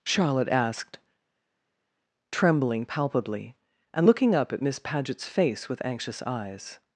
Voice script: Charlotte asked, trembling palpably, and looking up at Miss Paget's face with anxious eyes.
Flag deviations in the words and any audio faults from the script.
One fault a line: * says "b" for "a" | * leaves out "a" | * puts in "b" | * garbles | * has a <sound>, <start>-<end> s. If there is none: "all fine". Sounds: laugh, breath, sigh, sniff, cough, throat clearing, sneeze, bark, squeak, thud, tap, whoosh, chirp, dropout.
all fine